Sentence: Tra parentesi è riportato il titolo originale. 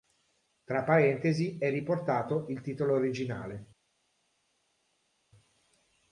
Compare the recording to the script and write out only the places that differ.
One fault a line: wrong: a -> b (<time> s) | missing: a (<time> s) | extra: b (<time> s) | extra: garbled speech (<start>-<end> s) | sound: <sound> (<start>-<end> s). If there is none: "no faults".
no faults